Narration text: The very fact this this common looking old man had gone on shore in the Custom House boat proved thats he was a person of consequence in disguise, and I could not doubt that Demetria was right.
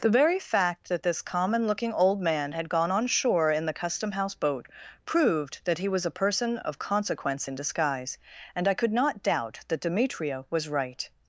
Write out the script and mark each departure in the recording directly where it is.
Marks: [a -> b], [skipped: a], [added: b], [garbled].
The very fact [this -> that] this common looking old man had gone on shore in the Custom House boat proved [thats -> that] he was a person of consequence in disguise, and I could not doubt that Demetria was right.